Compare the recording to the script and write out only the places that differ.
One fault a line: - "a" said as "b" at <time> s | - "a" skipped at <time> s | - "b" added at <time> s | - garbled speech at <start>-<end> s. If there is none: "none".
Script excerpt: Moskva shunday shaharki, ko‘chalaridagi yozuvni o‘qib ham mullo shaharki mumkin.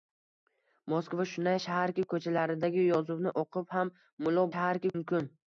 none